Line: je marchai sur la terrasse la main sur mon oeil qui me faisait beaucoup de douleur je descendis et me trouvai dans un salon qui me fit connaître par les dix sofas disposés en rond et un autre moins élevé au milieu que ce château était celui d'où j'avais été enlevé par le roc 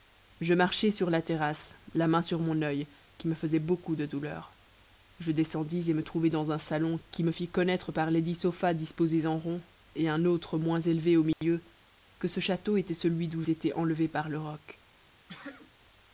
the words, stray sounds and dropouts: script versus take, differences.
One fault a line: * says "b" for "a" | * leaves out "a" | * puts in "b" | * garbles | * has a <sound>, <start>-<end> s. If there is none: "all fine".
* has a dropout, 11.3-11.4 s
* leaves out "j'avais"
* has a sneeze, 15.3-15.7 s